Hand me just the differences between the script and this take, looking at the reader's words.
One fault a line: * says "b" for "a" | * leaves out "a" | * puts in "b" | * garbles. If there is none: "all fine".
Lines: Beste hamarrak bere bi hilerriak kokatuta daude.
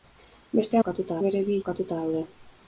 * says "kokatuta" for "hamarrak"
* leaves out "hilerriak"